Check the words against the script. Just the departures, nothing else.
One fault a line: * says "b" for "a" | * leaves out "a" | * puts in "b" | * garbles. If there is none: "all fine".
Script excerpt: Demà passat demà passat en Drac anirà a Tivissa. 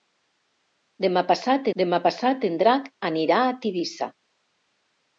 all fine